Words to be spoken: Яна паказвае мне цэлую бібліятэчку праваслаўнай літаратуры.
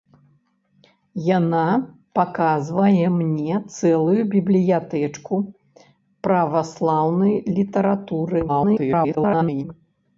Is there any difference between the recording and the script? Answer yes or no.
yes